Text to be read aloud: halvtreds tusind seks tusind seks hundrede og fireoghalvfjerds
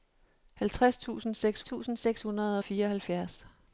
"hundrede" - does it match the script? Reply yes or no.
yes